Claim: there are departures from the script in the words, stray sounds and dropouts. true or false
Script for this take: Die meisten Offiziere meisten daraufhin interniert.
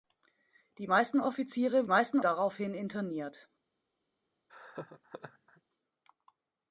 true